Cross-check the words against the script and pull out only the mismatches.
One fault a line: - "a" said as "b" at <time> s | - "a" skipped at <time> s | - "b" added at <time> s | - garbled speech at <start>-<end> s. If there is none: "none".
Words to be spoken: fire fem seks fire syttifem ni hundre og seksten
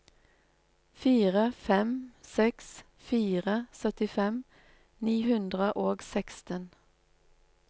none